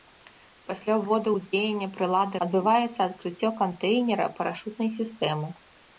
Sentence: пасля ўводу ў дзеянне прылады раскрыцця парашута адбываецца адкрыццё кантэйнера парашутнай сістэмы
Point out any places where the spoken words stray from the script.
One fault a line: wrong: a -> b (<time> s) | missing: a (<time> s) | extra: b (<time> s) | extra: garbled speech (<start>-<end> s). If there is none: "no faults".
missing: раскрыцця парашута (2.4 s)